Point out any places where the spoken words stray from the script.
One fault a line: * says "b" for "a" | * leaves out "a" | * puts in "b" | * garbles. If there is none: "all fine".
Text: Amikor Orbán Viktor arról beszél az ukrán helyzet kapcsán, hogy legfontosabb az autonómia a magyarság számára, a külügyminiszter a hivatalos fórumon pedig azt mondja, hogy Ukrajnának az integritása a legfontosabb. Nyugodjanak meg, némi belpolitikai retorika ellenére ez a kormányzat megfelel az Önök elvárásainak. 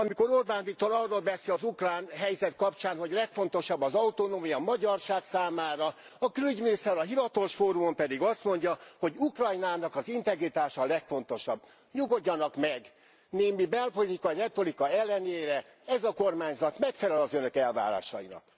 all fine